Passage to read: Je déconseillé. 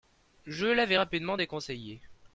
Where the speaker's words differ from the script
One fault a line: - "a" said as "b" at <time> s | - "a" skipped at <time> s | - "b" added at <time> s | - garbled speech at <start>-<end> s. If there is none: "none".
- "l'avais rapidement" added at 0.7 s